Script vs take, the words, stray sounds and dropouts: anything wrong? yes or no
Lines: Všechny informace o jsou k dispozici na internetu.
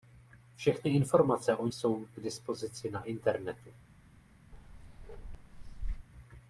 yes